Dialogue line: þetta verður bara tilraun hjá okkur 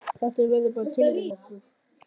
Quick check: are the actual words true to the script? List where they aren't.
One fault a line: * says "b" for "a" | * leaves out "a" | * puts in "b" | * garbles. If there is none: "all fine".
* leaves out "hjá"